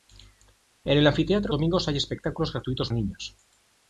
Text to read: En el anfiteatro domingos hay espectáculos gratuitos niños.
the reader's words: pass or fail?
pass